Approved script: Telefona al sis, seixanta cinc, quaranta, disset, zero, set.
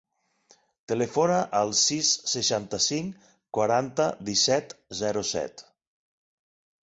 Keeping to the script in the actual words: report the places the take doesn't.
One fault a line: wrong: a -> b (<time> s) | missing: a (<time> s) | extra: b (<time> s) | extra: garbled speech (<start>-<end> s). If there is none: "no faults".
no faults